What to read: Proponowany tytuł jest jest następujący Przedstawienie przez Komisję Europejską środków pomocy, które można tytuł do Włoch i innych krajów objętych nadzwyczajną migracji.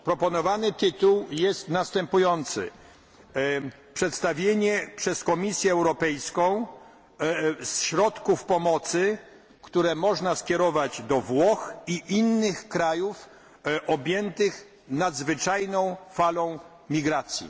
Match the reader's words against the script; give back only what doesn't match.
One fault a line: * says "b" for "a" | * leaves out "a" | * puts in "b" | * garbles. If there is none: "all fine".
* leaves out "jest"
* says "skierować" for "tytuł"
* puts in "falą"